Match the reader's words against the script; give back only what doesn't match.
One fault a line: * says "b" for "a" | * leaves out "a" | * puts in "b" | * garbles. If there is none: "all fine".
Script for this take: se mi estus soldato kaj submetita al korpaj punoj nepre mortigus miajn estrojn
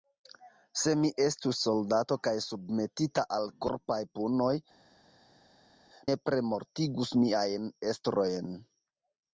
all fine